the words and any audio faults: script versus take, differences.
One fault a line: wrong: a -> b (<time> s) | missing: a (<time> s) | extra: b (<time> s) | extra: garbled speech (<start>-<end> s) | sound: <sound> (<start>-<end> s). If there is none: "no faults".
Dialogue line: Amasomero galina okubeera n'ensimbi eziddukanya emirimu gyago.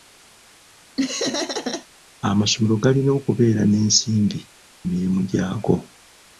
sound: laugh (1.0-1.9 s)
missing: eziddukanya (4.4 s)